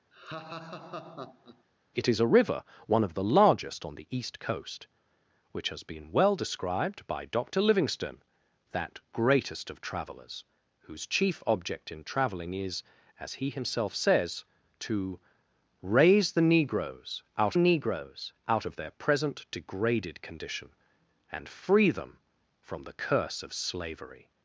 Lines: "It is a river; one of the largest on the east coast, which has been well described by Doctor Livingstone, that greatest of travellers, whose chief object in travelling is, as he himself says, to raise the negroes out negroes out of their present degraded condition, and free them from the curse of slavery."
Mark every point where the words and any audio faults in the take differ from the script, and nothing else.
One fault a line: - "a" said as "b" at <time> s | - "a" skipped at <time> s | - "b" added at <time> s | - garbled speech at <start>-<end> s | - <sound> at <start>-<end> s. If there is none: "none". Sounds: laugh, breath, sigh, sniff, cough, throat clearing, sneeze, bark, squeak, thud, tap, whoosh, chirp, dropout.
- laugh at 0.1-1.6 s